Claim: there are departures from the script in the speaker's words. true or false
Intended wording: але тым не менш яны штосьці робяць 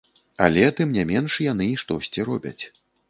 false